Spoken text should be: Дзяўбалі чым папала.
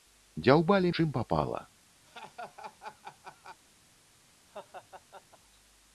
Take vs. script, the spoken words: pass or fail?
pass